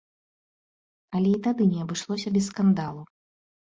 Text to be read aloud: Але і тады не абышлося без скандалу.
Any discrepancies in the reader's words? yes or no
no